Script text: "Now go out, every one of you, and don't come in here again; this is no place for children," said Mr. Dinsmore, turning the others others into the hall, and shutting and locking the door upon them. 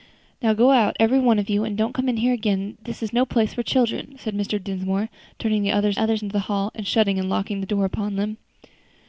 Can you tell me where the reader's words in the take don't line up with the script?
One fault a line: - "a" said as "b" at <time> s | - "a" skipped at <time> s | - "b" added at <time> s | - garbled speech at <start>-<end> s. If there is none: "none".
none